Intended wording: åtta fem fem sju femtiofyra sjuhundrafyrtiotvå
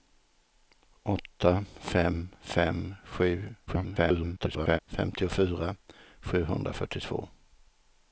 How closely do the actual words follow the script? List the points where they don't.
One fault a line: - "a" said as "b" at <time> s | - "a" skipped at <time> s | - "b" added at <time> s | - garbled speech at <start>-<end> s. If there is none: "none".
- garbled speech at 3.7-4.8 s